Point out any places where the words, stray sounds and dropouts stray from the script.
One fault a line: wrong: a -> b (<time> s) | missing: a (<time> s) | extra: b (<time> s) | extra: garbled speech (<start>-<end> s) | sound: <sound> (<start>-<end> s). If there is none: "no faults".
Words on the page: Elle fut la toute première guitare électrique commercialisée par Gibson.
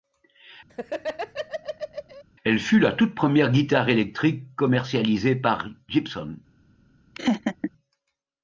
sound: laugh (0.7-2.2 s)
sound: laugh (7.1-7.7 s)